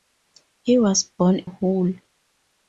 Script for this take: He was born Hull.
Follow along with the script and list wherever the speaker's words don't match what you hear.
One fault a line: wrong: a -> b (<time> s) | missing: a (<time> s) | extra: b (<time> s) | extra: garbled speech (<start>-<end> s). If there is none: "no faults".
no faults